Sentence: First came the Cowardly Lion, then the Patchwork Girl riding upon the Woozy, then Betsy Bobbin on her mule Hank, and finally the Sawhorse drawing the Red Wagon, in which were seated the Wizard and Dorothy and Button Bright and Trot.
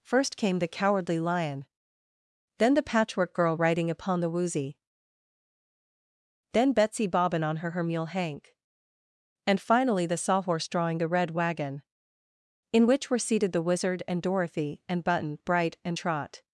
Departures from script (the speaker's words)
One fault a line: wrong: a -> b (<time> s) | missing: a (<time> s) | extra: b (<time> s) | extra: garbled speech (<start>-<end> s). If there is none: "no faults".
extra: her (7.7 s)